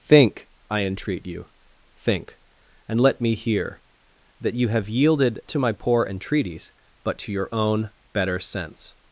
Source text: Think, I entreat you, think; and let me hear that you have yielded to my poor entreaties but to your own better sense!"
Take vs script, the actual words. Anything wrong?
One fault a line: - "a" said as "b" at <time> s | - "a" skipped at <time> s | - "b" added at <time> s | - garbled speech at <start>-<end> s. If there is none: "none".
none